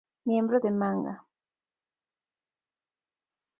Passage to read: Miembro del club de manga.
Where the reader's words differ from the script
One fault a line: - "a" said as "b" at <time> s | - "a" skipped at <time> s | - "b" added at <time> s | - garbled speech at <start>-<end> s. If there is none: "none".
- "del club" skipped at 0.6 s